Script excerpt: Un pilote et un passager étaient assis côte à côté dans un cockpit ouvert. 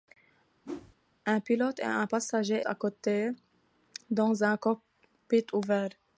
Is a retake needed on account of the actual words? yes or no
yes